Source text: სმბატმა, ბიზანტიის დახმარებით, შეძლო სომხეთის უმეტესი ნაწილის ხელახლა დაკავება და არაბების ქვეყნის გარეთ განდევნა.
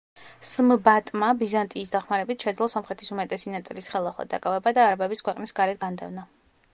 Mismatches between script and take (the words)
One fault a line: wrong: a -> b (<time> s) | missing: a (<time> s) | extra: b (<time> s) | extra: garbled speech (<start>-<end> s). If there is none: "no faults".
no faults